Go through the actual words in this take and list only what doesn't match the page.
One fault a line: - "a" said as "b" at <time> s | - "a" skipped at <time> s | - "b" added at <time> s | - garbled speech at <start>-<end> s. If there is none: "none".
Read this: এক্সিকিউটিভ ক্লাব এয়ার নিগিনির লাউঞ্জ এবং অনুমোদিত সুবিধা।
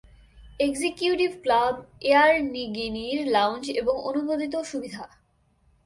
none